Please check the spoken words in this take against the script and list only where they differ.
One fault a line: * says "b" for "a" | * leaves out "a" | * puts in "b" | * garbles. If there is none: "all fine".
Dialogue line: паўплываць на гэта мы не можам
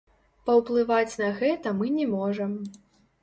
all fine